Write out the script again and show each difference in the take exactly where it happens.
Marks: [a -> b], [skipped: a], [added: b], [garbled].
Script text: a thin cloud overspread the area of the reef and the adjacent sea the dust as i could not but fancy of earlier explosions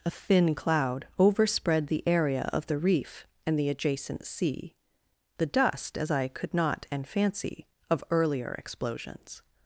a thin cloud overspread the area of the reef and the adjacent sea the dust as i could not [but -> and] fancy of earlier explosions